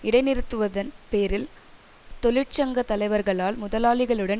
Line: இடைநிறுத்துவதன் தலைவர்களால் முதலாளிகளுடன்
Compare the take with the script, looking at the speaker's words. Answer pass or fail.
fail